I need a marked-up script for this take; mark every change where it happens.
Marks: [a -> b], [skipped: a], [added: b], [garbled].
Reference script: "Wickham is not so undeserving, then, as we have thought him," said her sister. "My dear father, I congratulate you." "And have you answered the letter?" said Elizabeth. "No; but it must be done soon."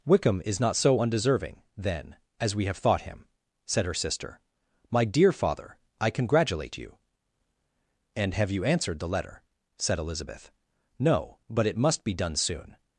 "Wickham is not so undeserving, then, as we have thought him," said her sister. "My dear father, I congratulate you." "And have you answered the letter?" said Elizabeth. "No; but it must be done soon."